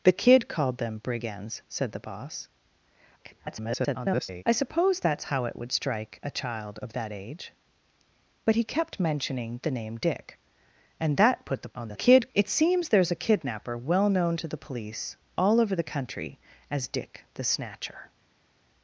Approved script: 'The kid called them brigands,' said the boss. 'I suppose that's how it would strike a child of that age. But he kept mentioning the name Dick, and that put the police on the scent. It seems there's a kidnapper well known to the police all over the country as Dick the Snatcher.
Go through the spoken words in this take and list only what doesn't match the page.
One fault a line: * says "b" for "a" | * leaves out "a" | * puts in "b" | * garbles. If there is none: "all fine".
* garbles
* leaves out "police"
* says "kid" for "scent"